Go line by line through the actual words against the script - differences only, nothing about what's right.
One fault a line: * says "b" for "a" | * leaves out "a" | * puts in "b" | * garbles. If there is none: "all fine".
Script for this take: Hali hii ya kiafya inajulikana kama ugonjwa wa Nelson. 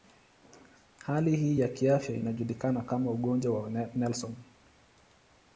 all fine